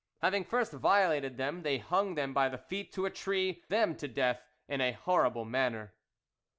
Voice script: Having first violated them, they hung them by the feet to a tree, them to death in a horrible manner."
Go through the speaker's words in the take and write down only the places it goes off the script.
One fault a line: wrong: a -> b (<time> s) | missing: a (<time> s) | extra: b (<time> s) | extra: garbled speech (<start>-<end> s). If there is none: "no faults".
no faults